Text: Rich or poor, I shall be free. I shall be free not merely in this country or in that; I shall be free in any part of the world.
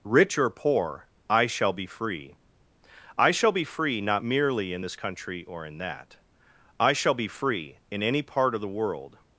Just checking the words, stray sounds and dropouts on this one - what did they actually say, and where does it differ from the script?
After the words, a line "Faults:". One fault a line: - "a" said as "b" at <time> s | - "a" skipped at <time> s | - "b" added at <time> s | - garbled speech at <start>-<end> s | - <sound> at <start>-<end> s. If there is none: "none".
Rich or poor, I shall be free. I shall be free not merely in this country or in that; I shall be free in any part of the world.
Faults:
none